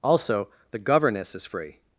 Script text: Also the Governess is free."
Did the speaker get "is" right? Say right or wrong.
right